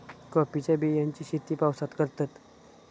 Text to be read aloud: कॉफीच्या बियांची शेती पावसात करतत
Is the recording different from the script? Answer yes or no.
no